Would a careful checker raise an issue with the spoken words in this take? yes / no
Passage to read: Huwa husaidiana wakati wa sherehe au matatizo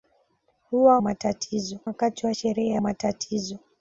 yes